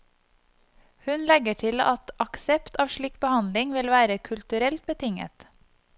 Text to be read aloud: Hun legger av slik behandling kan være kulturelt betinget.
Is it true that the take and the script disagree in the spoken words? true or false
true